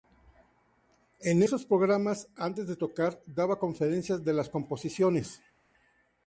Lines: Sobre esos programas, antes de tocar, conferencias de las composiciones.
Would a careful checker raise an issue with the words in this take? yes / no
yes